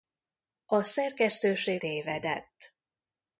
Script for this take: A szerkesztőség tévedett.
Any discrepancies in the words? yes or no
no